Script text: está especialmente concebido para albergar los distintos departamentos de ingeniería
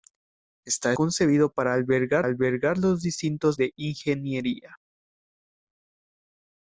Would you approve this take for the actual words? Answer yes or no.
no